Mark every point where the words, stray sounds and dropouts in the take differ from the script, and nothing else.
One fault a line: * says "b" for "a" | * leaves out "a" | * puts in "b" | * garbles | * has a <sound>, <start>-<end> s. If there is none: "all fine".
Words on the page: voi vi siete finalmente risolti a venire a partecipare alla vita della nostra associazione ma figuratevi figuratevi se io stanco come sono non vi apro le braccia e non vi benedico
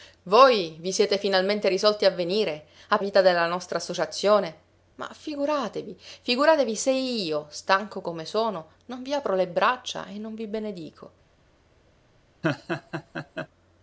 * leaves out "partecipare alla"
* has a laugh, 12.4-13.5 s